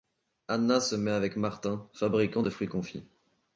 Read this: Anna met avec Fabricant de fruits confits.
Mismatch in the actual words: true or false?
true